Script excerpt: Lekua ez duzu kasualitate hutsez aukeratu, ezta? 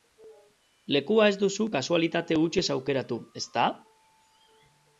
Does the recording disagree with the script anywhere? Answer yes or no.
no